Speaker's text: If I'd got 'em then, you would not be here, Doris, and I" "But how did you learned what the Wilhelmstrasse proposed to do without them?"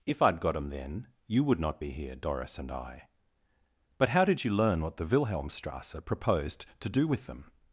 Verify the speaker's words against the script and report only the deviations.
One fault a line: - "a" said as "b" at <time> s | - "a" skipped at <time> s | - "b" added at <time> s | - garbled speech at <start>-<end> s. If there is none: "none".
- "learned" said as "learn" at 4.5 s
- "without" said as "with" at 7.1 s